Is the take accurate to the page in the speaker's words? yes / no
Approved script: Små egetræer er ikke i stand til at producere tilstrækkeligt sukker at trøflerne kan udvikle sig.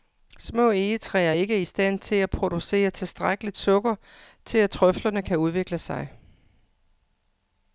no